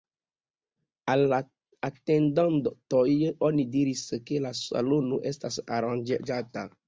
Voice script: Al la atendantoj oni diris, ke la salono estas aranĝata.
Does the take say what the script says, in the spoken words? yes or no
yes